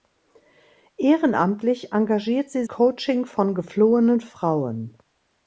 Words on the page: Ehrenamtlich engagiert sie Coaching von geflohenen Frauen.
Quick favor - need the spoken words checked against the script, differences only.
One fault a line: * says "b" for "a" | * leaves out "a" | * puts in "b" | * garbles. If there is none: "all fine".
all fine